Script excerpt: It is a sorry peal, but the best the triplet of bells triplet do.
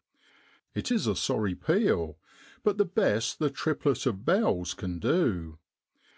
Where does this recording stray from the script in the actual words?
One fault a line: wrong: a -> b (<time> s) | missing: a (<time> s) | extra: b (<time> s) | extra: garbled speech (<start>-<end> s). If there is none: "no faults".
wrong: triplet -> can (4.7 s)